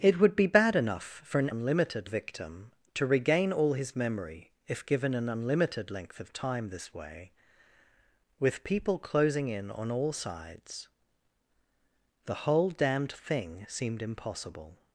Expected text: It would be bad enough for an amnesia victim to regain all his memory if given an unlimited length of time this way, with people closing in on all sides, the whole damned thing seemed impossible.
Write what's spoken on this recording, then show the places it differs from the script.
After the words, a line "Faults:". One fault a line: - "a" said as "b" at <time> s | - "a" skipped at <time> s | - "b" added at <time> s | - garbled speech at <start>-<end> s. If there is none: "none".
It would be bad enough for an unlimited victim to regain all his memory if given an unlimited length of time this way, with people closing in on all sides, the whole damned thing seemed impossible.
Faults:
- "amnesia" said as "unlimited" at 1.5 s